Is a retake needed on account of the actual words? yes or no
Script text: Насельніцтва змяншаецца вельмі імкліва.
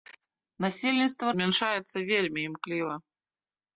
no